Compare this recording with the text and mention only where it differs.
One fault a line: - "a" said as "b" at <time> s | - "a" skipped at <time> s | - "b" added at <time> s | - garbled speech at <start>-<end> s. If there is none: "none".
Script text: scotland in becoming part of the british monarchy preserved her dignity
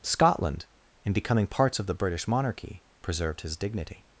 - "part" said as "parts" at 1.5 s
- "her" said as "his" at 3.4 s